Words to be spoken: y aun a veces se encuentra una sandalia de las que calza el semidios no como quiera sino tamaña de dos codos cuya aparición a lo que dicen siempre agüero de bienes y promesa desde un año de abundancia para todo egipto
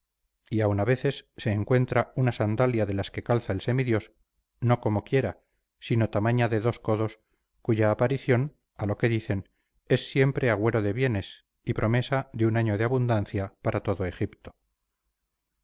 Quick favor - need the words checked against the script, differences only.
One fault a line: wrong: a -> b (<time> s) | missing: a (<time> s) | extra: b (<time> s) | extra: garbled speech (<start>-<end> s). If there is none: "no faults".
extra: es (9.9 s)
wrong: desde -> de (12.3 s)